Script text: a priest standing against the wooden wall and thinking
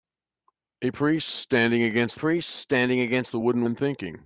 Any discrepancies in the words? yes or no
yes